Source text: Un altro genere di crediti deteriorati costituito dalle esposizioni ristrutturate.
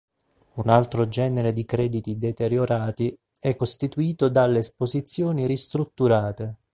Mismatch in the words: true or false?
true